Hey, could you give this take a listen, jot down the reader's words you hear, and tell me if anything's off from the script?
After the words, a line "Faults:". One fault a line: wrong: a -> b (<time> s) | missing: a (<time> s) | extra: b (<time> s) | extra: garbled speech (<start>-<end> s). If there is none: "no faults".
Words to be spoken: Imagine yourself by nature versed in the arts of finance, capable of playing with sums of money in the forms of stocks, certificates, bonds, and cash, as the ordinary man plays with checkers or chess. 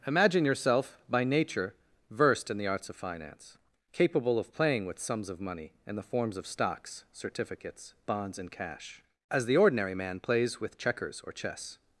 Imagine yourself by nature versed in the arts of finance, capable of playing with sums of money in the forms of stocks, certificates, bonds, and cash, as the ordinary man plays with checkers or chess.
Faults:
no faults